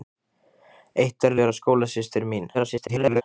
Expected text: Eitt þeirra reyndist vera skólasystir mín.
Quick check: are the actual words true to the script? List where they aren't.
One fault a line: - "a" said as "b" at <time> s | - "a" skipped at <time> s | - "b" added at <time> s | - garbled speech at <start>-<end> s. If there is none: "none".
- "reyndist" skipped at 1.4 s
- garbled speech at 2.5-3.2 s